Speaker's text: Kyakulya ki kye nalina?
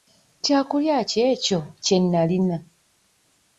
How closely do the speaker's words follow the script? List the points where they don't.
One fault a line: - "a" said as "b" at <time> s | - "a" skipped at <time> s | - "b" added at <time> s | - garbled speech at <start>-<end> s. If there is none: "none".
- "ekyo" added at 1.3 s